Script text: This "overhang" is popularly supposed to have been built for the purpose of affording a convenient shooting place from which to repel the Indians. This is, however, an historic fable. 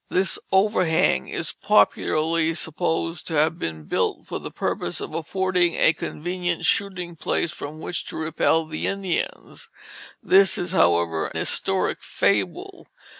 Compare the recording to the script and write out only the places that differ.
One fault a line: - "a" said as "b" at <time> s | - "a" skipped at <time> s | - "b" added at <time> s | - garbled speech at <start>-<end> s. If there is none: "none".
- "an" skipped at 11.3 s